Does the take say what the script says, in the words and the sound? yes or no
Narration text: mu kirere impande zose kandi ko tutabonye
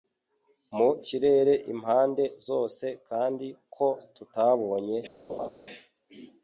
no